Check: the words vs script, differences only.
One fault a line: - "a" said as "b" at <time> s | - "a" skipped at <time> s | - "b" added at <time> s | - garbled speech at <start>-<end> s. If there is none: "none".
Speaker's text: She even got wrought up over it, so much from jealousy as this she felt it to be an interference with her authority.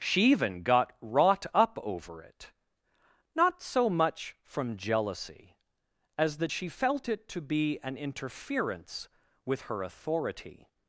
- "not" added at 3.4 s
- "this" said as "that" at 6.4 s